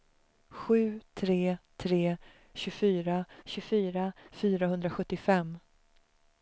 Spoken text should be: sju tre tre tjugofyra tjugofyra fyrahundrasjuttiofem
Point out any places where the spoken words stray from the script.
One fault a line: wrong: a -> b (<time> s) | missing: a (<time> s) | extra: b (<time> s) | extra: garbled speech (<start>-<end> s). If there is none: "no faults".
no faults